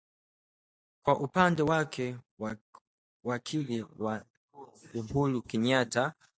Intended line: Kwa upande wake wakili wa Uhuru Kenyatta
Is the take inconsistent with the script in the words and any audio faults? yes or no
no